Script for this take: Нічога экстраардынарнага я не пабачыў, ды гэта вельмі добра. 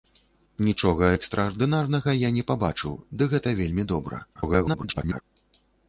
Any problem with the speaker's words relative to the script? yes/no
yes